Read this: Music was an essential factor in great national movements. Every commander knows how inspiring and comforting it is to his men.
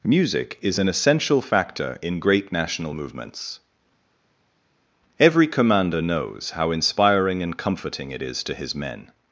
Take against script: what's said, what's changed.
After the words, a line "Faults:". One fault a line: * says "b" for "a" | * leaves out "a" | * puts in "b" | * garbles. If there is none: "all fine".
Music is an essential factor in great national movements. Every commander knows how inspiring and comforting it is to his men.
Faults:
* says "is" for "was"